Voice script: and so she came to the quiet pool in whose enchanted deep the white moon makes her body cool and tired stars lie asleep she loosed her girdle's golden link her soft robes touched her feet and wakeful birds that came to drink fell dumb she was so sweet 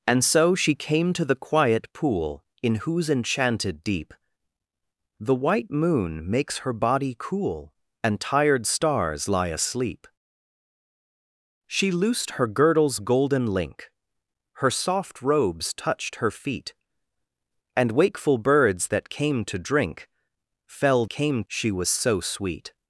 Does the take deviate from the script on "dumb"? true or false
true